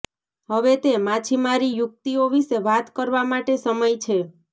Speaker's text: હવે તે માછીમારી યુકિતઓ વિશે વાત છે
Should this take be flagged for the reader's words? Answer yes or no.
yes